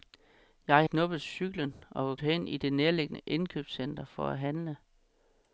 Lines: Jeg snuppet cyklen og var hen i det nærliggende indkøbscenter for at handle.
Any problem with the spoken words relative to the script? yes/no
no